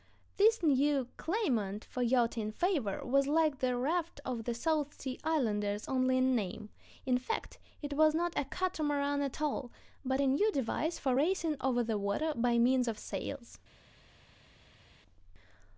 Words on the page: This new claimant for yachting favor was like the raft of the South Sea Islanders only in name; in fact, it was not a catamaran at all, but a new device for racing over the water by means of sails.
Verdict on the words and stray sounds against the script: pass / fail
pass